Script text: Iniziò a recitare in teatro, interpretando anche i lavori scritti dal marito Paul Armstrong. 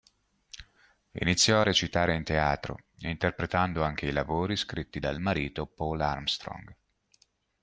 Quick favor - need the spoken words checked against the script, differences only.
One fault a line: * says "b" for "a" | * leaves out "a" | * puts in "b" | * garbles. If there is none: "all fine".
all fine